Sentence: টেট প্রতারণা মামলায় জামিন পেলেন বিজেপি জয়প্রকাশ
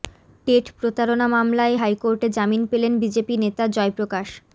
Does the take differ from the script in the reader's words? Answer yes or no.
yes